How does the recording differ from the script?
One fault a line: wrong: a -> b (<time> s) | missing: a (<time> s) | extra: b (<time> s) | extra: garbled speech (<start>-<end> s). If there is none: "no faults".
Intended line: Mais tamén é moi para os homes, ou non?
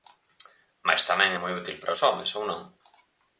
extra: útil (1.6 s)